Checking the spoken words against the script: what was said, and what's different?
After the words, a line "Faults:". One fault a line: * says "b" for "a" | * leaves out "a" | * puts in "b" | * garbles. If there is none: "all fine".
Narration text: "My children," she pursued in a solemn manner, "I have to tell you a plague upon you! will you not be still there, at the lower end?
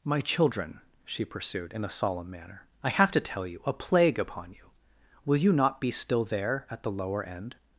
"My children," she pursued in a solemn manner, "I have to tell you a plague upon you! will you not be still there, at the lower end?
Faults:
all fine